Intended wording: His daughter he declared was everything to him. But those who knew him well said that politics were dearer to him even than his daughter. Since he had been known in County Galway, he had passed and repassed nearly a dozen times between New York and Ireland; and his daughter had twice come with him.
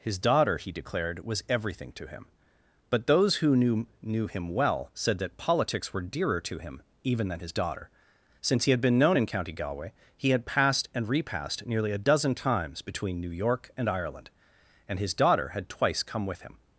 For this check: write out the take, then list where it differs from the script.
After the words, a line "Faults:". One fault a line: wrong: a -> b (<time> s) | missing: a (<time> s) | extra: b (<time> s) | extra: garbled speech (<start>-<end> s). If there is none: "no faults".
His daughter he declared was everything to him. But those who knew knew him well said that politics were dearer to him even than his daughter. Since he had been known in County Galway, he had passed and repassed nearly a dozen times between New York and Ireland; and his daughter had twice come with him.
Faults:
extra: knew (4.0 s)